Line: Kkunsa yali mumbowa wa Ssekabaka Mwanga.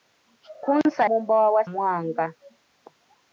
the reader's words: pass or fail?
fail